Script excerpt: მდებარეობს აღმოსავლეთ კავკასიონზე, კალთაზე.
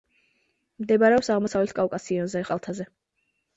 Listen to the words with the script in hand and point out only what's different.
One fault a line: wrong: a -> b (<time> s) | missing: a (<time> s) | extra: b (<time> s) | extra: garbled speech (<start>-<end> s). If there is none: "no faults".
no faults